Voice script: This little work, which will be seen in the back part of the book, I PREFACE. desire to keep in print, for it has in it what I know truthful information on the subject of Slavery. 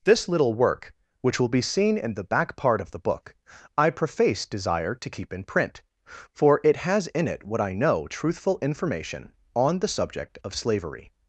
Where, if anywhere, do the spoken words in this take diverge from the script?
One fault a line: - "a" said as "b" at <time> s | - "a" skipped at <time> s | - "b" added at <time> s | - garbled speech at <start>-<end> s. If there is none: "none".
none